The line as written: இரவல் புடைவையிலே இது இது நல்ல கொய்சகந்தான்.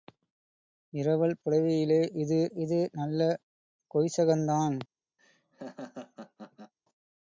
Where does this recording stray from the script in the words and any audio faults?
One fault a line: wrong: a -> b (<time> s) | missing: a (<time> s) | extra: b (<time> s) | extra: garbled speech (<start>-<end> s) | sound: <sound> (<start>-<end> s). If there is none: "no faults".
sound: laugh (5.2-6.7 s)